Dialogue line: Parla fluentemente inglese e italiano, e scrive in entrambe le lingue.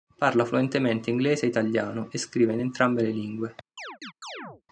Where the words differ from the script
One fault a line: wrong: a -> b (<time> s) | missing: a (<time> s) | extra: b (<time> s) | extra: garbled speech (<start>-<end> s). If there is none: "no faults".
no faults